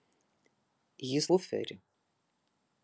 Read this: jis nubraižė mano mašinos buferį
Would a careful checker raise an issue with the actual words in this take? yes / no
yes